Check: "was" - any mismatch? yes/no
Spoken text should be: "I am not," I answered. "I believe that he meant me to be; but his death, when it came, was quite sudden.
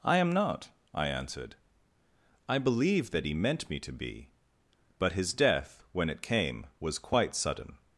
no